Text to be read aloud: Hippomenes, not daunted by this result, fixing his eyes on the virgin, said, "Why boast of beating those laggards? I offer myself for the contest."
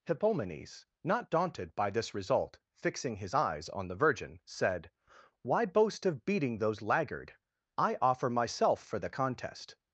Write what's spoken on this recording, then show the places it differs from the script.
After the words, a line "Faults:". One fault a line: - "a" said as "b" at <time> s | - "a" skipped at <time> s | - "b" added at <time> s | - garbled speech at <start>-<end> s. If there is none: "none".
Hippomenes, not daunted by this result, fixing his eyes on the virgin, said, "Why boast of beating those laggard? I offer myself for the contest."
Faults:
- "laggards" said as "laggard" at 6.8 s